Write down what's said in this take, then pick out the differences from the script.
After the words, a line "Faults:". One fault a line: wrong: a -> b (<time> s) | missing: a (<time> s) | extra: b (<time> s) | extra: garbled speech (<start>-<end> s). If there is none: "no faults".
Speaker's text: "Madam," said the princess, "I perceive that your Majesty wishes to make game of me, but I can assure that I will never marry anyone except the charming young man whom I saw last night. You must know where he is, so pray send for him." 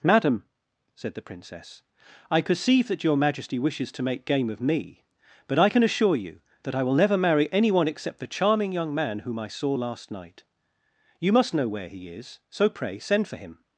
"Madam," said the princess, "I perceive that your Majesty wishes to make game of me, but I can assure you that I will never marry anyone except the charming young man whom I saw last night. You must know where he is, so pray send for him."
Faults:
extra: you (6.2 s)